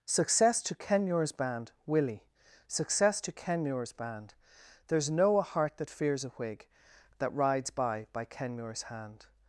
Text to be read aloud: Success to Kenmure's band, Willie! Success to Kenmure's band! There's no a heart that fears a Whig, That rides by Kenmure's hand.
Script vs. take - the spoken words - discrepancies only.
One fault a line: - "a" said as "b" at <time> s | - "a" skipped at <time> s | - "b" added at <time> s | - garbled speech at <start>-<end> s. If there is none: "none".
- "by" added at 8.1 s